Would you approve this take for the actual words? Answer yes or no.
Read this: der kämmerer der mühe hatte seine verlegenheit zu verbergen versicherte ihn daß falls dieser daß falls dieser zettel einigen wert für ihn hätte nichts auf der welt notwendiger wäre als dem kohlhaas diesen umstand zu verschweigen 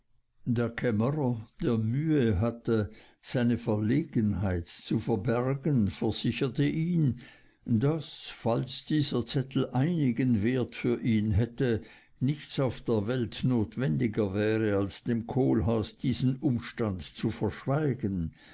no